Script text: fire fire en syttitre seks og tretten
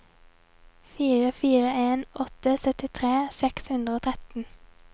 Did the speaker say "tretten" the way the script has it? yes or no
yes